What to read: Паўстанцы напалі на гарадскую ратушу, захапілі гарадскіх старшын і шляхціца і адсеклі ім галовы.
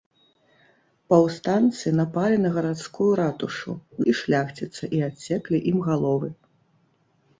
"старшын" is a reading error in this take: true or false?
true